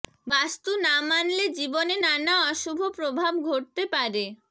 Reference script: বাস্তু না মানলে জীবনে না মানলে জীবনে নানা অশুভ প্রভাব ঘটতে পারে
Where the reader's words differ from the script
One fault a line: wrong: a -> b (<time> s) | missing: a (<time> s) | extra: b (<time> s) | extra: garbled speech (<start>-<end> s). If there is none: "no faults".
missing: না মানলে জীবনে (1.9 s)